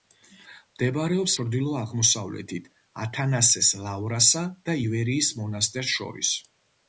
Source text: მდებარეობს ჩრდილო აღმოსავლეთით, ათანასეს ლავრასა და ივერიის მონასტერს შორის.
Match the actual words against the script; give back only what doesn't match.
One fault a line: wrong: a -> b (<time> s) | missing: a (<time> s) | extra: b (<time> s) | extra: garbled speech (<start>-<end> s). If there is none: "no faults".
no faults